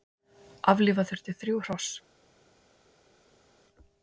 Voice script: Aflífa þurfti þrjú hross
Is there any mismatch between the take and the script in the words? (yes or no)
no